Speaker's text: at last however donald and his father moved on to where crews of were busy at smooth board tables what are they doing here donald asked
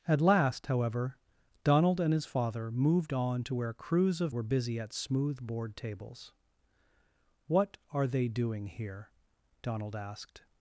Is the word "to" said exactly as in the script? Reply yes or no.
yes